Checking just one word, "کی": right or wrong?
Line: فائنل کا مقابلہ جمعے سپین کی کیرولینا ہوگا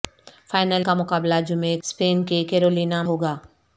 right